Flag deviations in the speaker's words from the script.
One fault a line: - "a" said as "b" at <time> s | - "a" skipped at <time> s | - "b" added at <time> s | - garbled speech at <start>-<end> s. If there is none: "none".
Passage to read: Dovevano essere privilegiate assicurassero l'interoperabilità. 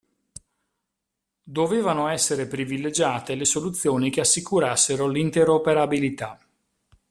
- "le soluzioni che" added at 3.4 s